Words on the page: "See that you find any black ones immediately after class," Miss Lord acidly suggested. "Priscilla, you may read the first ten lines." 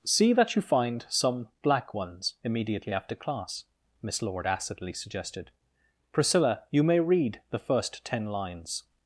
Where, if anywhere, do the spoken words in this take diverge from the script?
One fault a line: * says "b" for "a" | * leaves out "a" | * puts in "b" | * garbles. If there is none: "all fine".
* says "some" for "any"